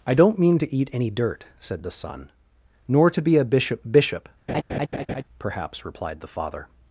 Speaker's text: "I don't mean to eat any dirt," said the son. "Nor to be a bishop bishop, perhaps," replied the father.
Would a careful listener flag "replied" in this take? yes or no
no